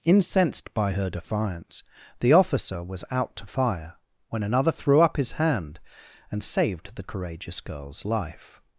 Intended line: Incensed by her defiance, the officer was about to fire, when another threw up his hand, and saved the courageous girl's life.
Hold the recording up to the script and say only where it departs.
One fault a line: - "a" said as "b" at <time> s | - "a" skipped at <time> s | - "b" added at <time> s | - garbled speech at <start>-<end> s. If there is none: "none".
- "about" said as "out" at 3.1 s